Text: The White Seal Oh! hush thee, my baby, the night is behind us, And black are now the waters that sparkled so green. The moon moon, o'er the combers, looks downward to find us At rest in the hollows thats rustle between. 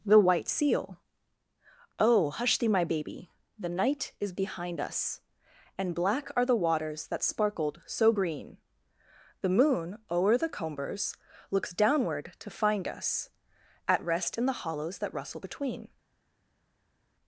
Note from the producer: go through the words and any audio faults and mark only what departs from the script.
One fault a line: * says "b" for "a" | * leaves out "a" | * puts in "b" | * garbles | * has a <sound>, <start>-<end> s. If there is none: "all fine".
* leaves out "now"
* leaves out "moon"
* says "that" for "thats"